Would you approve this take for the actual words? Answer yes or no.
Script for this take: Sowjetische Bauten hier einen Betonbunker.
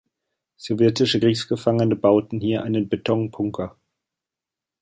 no